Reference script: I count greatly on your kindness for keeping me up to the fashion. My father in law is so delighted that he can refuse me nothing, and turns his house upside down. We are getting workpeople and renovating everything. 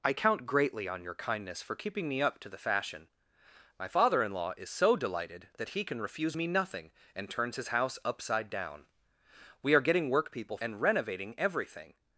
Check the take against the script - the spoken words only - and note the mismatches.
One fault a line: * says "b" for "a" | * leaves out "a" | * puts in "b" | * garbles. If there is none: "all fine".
all fine